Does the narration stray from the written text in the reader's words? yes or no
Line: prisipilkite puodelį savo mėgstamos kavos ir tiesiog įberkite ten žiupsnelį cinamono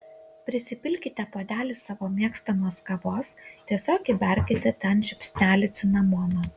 yes